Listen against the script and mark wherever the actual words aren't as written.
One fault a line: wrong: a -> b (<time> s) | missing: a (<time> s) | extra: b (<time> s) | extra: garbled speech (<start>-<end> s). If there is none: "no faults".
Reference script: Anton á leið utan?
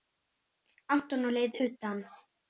no faults